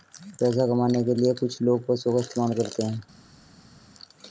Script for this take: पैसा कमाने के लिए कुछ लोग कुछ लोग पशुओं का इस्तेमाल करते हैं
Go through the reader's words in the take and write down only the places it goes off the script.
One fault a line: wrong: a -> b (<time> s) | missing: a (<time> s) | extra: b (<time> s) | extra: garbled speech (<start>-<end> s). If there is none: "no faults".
missing: कुछ लोग (1.9 s)